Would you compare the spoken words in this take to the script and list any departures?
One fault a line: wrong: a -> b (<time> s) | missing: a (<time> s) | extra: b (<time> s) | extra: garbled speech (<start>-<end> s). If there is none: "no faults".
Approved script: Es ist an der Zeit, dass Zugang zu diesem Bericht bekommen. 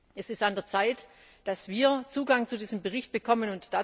extra: wir (1.7 s)